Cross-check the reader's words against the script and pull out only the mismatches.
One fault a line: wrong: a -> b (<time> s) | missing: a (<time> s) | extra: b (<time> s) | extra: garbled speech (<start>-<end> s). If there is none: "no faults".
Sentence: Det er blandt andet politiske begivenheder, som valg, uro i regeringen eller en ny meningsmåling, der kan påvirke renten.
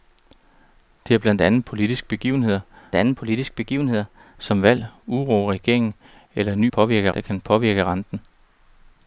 extra: andet politiske begivenheder (2.9 s)
wrong: meningsmåling -> påvirke (6.7 s)